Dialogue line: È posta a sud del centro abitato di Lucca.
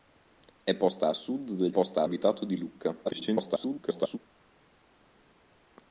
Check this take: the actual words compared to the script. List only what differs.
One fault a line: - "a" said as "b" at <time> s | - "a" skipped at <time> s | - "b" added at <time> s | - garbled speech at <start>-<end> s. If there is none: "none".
- "centro" said as "posta" at 1.7 s
- garbled speech at 3.0-4.2 s